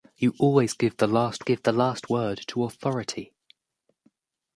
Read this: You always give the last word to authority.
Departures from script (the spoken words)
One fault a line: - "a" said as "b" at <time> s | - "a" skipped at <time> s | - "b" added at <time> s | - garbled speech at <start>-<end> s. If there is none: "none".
- "give the last" added at 1.4 s